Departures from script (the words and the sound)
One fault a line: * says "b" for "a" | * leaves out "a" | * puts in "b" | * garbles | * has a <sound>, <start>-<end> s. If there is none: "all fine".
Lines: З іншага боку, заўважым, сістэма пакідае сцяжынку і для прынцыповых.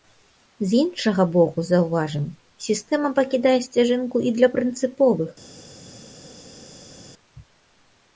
all fine